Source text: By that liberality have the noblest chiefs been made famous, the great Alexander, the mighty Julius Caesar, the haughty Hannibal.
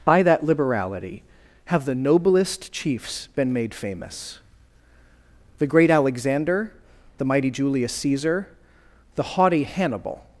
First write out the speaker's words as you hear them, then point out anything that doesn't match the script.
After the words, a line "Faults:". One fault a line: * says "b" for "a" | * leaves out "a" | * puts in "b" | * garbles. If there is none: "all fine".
By that liberality have the noblest chiefs been made famous, the great Alexander, the mighty Julius Caesar, the haughty Hannibal.
Faults:
all fine